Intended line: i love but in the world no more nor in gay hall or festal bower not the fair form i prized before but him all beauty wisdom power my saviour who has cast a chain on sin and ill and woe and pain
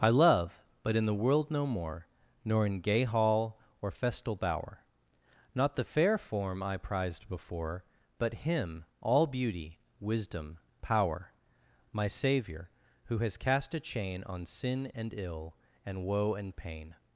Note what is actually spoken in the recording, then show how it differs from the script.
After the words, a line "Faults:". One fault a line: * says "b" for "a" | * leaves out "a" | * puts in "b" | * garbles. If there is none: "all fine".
i love but in the world no more nor in gay hall or festal bower not the fair form i prized before but him all beauty wisdom power my saviour who has cast a chain on sin and ill and woe and pain
Faults:
all fine